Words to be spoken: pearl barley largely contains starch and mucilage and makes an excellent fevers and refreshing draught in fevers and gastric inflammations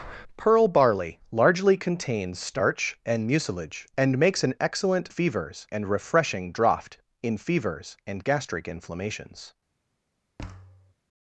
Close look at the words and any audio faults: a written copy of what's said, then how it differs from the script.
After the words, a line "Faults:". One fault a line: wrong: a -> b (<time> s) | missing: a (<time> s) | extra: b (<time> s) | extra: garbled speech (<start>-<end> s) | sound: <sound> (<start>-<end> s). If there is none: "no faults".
pearl barley largely contains starch and mucilage and makes an excellent fevers and refreshing draught in fevers and gastric inflammations
Faults:
sound: thud (10.4-10.9 s)